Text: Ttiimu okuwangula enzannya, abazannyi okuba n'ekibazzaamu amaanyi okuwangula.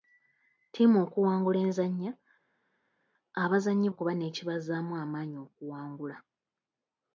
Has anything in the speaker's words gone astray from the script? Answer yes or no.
no